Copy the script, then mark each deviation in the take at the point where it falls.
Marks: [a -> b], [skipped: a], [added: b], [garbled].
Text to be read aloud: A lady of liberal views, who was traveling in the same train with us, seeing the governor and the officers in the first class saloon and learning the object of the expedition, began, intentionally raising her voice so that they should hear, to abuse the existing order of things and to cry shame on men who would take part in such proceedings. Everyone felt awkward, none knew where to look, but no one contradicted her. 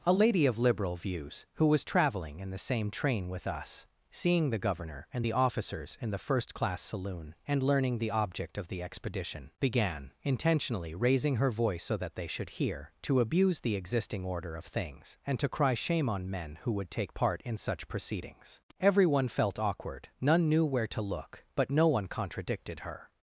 A lady of liberal views, who was traveling in the same train with us, seeing the governor and the officers in the first class saloon and learning the object of the expedition, began, intentionally raising her voice so that they should hear, to abuse the existing order of things and to cry shame on men who would take part in such proceedings. Everyone felt awkward, none knew where to look, but no one contradicted her.